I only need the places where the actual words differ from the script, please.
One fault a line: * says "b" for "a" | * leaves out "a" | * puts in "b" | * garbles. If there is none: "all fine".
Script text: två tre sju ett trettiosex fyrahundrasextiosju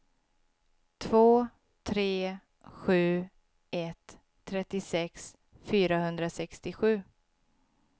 all fine